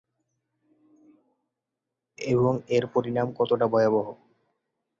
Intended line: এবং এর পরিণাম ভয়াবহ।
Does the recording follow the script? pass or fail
fail